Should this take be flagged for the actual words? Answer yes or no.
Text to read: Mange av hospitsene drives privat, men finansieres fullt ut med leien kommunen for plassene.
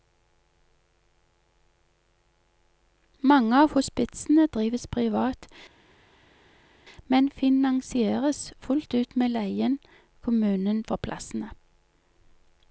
no